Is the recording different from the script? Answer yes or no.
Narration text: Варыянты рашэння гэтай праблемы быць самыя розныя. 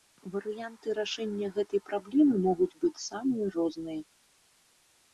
yes